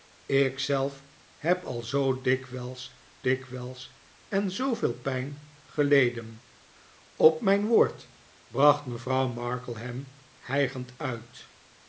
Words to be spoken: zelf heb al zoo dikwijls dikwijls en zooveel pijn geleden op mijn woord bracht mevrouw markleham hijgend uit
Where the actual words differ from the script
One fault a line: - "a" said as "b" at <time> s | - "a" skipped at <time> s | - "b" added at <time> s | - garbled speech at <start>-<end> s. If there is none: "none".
none